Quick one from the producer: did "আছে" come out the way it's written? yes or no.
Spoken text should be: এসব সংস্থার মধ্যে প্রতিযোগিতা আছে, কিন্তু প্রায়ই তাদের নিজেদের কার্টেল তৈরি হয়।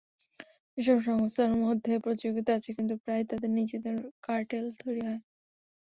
yes